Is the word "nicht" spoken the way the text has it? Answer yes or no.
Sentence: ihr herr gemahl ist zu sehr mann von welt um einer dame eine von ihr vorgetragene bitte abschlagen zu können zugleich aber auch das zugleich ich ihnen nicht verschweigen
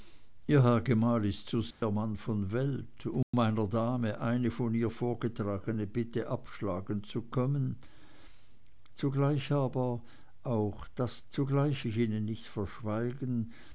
yes